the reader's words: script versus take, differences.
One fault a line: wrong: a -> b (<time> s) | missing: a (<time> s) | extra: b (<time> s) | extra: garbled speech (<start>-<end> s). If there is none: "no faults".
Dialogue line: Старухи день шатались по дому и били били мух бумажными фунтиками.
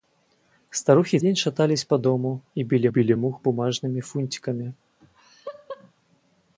no faults